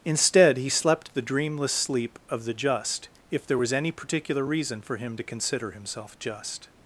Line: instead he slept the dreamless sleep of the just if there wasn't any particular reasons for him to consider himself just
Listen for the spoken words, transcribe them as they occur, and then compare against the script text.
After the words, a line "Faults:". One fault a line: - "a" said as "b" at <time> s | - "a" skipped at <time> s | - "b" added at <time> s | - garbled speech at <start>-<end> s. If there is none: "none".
instead he slept the dreamless sleep of the just if there was any particular reason for him to consider himself just
Faults:
- "wasn't" said as "was" at 3.6 s
- "reasons" said as "reason" at 4.4 s